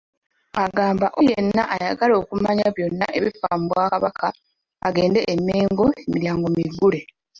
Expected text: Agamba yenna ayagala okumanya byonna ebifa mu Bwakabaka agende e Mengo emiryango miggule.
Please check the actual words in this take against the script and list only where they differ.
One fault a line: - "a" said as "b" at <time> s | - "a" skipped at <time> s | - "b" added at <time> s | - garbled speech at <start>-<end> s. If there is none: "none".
none